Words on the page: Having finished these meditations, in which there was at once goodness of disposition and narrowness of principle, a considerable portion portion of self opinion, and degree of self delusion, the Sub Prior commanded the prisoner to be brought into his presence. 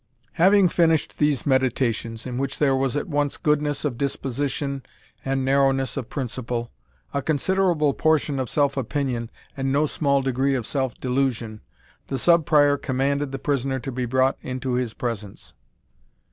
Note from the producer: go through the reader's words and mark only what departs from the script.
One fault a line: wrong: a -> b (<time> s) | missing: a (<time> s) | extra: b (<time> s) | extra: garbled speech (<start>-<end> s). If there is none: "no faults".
missing: portion (8.4 s)
extra: no small (9.7 s)